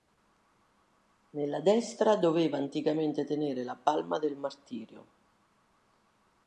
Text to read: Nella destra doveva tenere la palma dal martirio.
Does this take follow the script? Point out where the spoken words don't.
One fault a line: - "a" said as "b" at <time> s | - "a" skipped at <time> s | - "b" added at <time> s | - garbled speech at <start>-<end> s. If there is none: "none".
- "anticamente" added at 2.6 s
- "dal" said as "del" at 4.2 s